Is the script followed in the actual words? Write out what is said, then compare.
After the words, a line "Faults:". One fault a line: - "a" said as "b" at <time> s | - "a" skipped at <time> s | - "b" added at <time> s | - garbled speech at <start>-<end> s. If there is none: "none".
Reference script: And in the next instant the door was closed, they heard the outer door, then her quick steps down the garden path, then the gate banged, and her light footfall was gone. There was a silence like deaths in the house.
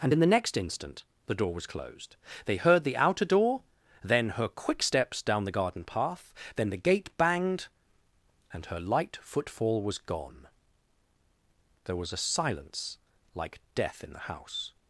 And in the next instant the door was closed, they heard the outer door, then her quick steps down the garden path, then the gate banged, and her light footfall was gone. There was a silence like death in the house.
Faults:
- "deaths" said as "death" at 13.7 s